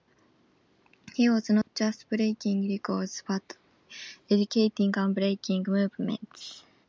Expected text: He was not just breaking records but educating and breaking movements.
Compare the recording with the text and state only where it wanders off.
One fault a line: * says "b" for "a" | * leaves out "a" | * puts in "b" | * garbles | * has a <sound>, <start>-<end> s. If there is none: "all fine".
* has a dropout, 1.6-1.7 s